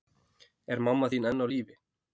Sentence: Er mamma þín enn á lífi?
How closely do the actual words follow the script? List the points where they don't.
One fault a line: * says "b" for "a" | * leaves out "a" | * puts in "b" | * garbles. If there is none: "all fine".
all fine